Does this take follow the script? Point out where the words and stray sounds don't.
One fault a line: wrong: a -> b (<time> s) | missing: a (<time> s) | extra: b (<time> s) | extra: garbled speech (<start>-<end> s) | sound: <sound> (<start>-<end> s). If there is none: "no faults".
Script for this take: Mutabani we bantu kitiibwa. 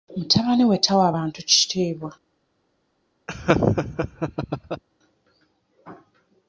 extra: tawa (0.8 s)
sound: laugh (3.3-4.8 s)